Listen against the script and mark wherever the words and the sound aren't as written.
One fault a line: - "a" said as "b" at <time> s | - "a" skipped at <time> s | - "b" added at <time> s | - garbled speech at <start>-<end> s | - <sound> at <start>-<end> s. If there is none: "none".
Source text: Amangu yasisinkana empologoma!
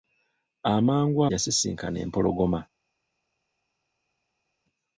none